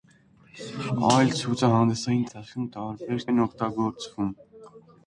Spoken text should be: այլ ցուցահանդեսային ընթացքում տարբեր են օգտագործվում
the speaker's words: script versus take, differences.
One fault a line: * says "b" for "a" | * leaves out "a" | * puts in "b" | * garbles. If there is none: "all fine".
all fine